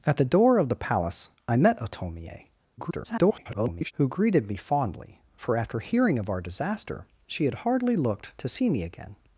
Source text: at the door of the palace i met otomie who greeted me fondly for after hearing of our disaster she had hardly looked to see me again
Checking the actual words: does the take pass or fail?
fail